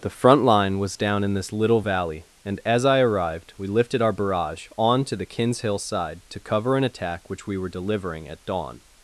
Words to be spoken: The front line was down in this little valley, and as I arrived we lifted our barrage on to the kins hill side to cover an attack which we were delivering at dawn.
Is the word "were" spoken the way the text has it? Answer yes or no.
yes